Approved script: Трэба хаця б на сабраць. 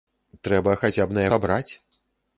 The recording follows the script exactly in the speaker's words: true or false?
true